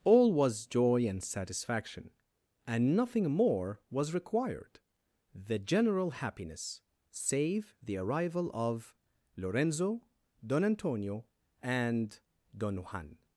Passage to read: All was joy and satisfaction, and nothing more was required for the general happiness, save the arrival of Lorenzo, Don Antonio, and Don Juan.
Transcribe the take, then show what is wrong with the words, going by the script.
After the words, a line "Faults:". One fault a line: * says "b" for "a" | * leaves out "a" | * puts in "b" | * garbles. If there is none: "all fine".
All was joy and satisfaction, and nothing more was required the general happiness, save the arrival of Lorenzo, Don Antonio, and Don Juan.
Faults:
* leaves out "for"